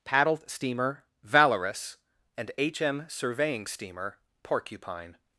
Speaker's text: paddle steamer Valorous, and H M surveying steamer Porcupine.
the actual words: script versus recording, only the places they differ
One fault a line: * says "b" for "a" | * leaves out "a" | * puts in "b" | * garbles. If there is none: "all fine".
* says "paddled" for "paddle"